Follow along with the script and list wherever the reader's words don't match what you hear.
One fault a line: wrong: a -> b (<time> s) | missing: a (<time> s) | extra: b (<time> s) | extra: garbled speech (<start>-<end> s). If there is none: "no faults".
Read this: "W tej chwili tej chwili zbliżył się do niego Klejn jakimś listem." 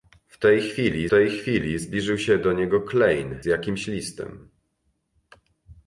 no faults